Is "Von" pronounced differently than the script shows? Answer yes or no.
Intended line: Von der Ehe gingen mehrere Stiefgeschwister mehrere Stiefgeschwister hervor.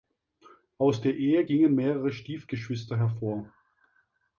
yes